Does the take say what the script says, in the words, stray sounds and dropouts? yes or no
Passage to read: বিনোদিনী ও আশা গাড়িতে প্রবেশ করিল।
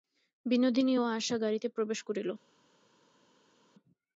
yes